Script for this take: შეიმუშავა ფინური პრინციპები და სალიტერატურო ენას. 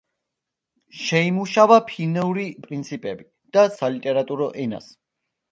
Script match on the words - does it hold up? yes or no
yes